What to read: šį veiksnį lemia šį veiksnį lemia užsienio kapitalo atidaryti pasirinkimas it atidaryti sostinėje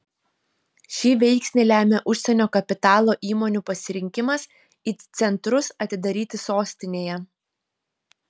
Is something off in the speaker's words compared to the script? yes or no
yes